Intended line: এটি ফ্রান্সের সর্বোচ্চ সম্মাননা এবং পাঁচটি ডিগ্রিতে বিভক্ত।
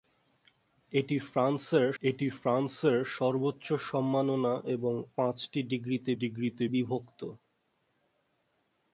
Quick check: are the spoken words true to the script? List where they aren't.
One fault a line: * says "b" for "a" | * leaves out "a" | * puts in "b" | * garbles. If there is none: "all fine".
* puts in "এটি ফ্রান্সের"
* puts in "ডিগ্রিতে"